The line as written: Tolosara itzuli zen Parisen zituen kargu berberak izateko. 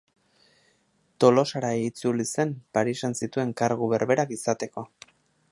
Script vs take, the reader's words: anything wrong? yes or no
no